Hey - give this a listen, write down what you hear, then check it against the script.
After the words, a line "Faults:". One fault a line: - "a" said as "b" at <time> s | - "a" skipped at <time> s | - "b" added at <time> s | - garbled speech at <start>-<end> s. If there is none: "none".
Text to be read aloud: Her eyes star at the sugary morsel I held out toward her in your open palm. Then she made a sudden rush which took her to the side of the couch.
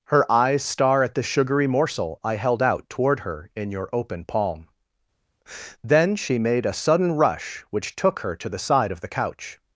Her eyes star at the sugary morsel I held out toward her in your open palm. Then she made a sudden rush which took her to the side of the couch.
Faults:
none